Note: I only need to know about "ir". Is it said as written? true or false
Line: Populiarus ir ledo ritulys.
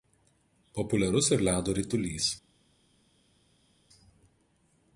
true